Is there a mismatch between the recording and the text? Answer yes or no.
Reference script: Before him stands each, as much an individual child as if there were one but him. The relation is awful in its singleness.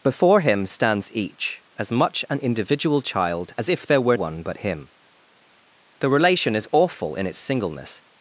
no